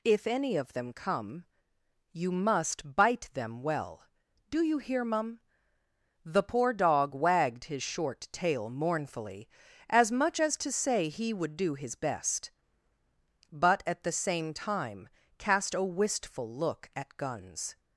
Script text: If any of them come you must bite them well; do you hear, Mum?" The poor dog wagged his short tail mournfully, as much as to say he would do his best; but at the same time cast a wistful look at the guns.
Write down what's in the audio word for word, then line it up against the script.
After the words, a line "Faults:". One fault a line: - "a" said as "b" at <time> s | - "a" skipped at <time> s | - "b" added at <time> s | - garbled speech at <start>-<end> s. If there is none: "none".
If any of them come you must bite them well; do you hear, Mum?" The poor dog wagged his short tail mournfully, as much as to say he would do his best; but at the same time cast a wistful look at guns.
Faults:
- "the" skipped at 17.2 s